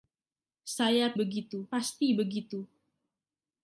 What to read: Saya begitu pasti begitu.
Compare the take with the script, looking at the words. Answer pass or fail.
pass